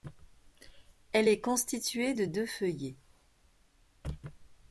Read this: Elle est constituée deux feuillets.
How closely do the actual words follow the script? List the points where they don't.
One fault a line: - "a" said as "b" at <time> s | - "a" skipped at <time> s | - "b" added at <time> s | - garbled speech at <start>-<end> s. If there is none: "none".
- "de" added at 2.1 s